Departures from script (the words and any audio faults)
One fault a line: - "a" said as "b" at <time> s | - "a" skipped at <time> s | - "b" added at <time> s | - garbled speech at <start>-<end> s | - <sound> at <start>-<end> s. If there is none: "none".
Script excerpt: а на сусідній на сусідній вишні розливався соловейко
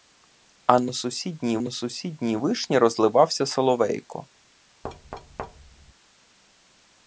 - thud at 4.8-5.9 s